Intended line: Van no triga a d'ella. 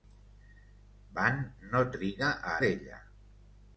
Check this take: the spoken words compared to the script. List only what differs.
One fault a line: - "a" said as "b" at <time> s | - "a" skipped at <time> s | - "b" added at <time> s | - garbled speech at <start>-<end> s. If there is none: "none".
none